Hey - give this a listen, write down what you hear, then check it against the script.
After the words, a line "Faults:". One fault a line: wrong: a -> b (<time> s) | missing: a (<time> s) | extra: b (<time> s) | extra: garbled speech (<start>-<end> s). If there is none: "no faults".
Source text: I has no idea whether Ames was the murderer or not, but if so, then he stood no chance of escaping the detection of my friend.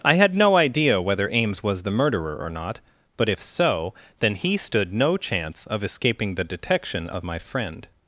I had no idea whether Ames was the murderer or not, but if so, then he stood no chance of escaping the detection of my friend.
Faults:
wrong: has -> had (0.1 s)